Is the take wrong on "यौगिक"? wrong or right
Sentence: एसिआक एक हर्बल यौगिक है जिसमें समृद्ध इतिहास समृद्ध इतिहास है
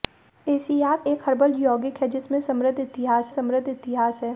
right